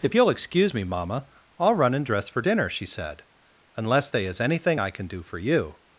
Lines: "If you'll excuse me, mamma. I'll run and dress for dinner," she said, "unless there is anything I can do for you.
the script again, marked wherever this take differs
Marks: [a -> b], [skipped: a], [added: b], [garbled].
"If you'll excuse me, mamma. I'll run and dress for dinner," she said, "unless [there -> they] is anything I can do for you.